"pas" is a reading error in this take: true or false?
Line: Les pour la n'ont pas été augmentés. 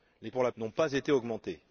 false